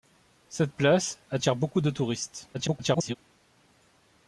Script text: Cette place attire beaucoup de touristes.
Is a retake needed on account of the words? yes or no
yes